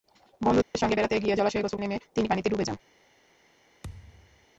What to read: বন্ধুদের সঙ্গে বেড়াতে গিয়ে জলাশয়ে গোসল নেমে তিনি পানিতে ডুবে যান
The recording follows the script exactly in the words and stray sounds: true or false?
false